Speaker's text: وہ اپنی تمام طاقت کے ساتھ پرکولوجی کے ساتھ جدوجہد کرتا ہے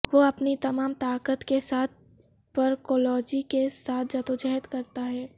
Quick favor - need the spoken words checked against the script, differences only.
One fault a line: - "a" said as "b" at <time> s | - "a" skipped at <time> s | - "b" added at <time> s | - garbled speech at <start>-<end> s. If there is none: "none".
none